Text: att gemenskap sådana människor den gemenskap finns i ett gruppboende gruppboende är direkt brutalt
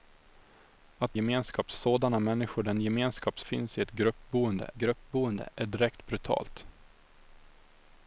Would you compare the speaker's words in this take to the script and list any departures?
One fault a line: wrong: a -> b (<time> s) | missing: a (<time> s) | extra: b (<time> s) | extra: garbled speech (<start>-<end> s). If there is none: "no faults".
no faults